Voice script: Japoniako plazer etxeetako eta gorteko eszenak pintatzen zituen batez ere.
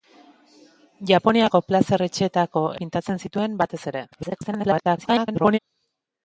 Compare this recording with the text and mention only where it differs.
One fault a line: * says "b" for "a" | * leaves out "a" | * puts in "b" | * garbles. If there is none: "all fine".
* leaves out "eta gorteko eszenak"
* garbles